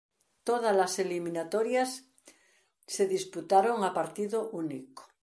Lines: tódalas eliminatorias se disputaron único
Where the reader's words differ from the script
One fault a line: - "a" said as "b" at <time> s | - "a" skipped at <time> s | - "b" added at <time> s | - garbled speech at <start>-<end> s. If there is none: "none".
- "a partido" added at 3.8 s